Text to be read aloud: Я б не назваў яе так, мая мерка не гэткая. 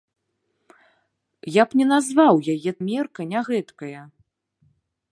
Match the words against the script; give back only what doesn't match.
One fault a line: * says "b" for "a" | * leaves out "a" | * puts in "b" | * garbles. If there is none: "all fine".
* leaves out "так мая"